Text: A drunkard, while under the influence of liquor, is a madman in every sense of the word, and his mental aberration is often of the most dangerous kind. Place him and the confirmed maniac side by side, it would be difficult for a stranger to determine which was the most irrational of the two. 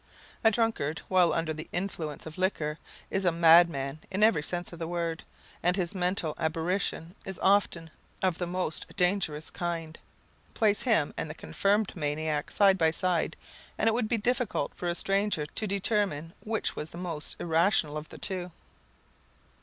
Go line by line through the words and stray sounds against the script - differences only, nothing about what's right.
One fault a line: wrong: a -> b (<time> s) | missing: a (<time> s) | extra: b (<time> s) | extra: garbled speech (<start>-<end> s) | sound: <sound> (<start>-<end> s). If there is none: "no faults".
extra: and (13.8 s)